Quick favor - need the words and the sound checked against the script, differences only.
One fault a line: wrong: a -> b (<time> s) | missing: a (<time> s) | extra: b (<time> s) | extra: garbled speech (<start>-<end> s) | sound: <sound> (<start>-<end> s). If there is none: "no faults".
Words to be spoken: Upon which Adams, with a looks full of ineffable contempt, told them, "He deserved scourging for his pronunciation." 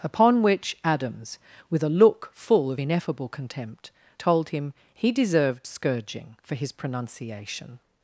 wrong: looks -> look (1.9 s)
wrong: them -> him (4.5 s)